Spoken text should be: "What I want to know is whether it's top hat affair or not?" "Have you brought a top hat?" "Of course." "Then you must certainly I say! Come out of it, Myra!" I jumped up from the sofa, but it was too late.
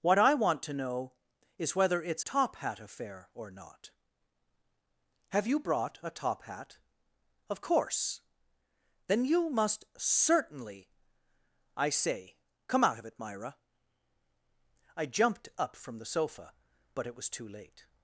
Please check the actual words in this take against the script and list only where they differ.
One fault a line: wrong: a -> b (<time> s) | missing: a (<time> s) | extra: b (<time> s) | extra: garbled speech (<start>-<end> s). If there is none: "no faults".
no faults